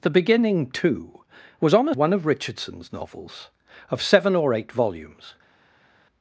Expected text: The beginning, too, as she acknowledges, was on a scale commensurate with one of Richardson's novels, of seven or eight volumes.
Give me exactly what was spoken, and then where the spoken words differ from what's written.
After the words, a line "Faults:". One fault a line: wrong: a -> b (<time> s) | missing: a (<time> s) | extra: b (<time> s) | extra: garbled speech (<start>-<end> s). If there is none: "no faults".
The beginning, too, was on a one of Richardson's novels, of seven or eight volumes.
Faults:
missing: as she acknowledges (1.2 s)
missing: scale commensurate with (1.9 s)